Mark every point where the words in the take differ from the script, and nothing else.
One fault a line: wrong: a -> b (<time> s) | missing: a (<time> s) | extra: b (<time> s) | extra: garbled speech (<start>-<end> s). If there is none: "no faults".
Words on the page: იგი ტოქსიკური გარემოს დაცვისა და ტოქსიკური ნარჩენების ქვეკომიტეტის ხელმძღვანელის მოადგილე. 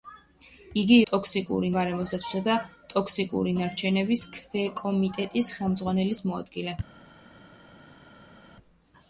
no faults